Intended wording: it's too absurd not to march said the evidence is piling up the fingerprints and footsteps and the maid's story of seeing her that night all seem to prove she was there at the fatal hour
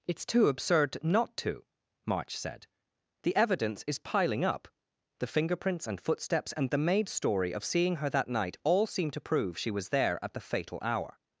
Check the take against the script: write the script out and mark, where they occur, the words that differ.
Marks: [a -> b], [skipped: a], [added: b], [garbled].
it's too absurd not to march said the evidence is piling up the fingerprints and footsteps and the maid's story of seeing her that night all seem to prove she was there at the fatal hour